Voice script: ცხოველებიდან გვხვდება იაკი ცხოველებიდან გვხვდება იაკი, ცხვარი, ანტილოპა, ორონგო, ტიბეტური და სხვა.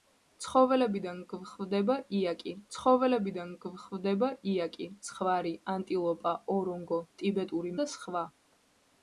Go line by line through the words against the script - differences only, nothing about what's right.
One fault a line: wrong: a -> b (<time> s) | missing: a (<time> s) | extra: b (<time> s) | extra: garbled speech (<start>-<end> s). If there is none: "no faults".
no faults